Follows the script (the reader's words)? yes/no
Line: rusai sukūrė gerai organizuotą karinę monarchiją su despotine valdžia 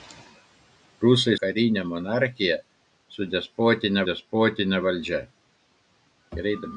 no